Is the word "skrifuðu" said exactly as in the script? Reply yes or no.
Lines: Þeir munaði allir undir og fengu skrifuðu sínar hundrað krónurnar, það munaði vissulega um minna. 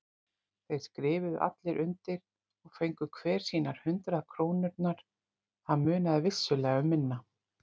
no